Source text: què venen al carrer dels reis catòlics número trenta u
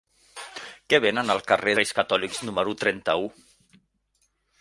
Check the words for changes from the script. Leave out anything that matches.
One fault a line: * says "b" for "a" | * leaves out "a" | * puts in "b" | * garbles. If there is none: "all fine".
* leaves out "dels"